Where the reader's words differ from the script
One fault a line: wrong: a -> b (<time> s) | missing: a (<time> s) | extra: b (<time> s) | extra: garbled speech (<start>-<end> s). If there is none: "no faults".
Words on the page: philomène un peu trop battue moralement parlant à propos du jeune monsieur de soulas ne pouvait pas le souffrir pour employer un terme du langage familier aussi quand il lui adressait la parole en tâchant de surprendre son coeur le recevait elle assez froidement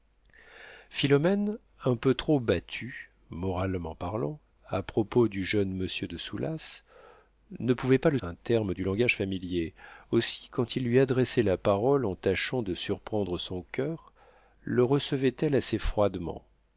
missing: souffrir pour employer (8.2 s)